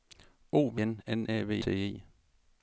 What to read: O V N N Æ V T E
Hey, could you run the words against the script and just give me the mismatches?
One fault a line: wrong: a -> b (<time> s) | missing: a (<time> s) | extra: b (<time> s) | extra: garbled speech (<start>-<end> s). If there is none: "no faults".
no faults